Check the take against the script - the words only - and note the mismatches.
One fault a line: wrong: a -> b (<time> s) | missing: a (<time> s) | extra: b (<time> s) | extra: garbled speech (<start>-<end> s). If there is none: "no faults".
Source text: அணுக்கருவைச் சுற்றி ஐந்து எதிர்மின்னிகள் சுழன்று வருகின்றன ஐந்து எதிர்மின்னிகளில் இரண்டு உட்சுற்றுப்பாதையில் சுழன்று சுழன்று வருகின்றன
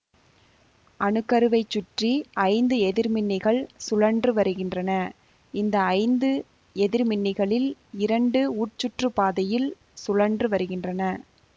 extra: இந்த (5.5 s)
missing: சுழன்று (10.5 s)